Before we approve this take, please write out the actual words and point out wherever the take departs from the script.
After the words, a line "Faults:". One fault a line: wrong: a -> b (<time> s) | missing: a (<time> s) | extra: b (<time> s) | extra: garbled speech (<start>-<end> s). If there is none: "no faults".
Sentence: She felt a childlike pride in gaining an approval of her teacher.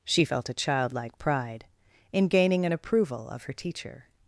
She felt a childlike pride in gaining an approval of her teacher.
Faults:
no faults